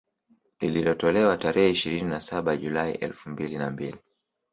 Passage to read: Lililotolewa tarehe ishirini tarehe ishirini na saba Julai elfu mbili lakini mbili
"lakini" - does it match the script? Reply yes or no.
no